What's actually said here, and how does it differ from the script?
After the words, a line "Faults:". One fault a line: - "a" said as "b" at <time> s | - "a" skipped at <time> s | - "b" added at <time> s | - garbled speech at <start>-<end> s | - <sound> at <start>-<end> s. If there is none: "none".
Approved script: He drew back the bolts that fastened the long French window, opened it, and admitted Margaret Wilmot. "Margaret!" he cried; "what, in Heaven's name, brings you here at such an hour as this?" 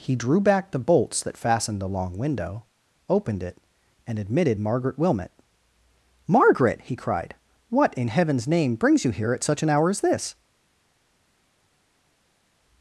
He drew back the bolts that fastened the long window, opened it, and admitted Margaret Wilmot. "Margaret!" he cried; "what, in Heaven's name, brings you here at such an hour as this?"
Faults:
- "French" skipped at 2.2 s